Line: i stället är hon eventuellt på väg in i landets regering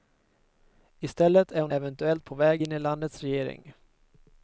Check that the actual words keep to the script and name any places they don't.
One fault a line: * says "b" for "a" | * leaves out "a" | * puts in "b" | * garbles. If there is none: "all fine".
all fine